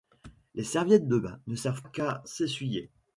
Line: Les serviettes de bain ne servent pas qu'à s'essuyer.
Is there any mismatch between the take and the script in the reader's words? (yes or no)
yes